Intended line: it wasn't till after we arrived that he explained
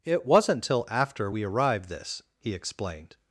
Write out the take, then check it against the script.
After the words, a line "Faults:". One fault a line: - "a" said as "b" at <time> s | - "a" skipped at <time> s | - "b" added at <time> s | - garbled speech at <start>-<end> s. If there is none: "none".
it wasn't till after we arrived this he explained
Faults:
- "that" said as "this" at 1.9 s